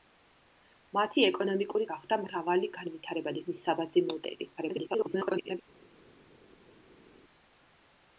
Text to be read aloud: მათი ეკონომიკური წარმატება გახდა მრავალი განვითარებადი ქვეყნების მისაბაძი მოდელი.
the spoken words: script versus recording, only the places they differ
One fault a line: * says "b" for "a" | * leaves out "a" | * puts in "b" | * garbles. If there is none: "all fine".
* leaves out "წარმატება"
* leaves out "ქვეყნების"
* garbles